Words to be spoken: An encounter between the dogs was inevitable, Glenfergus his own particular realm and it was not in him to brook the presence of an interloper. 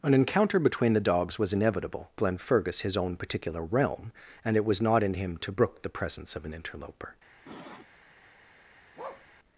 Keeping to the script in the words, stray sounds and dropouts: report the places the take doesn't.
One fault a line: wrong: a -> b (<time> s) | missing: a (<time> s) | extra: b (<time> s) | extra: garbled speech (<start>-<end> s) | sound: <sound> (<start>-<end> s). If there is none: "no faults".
sound: sniff (7.4-7.9 s)
sound: bark (9.0-9.3 s)